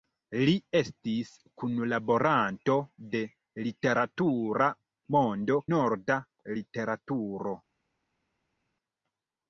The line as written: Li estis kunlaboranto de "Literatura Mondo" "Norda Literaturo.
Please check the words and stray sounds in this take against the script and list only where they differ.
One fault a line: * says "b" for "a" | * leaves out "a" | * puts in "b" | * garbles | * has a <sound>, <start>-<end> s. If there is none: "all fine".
all fine